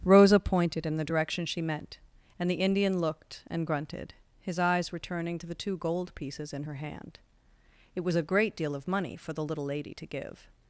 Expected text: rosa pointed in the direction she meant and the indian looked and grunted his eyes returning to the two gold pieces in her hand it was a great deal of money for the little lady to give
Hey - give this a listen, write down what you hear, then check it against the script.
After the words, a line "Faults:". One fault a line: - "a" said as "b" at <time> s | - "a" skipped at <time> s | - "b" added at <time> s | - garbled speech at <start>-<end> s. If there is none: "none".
rosa pointed in the direction she meant and the indian looked and grunted his eyes returning to the two gold pieces in her hand it was a great deal of money for the little lady to give
Faults:
none